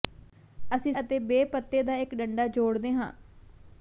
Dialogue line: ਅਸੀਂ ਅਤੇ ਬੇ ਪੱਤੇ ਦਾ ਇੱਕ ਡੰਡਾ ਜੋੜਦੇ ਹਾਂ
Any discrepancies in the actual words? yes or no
no